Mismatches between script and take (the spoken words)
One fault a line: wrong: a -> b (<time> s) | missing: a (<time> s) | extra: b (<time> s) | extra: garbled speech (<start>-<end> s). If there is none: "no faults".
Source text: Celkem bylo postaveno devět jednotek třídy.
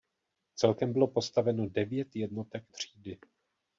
no faults